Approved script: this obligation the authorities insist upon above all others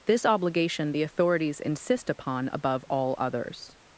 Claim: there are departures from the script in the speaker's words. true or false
false